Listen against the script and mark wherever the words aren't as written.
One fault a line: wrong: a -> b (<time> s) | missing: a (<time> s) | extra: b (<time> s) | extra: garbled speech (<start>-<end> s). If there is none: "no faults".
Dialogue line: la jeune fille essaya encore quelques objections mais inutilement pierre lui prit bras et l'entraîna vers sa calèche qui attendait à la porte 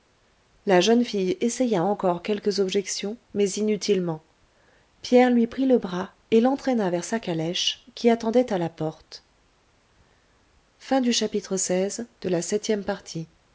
extra: le (5.6 s)